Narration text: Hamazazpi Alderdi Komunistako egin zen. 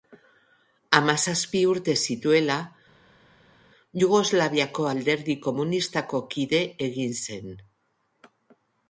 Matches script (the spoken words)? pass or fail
fail